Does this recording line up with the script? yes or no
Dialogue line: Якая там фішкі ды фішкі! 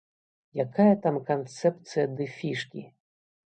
no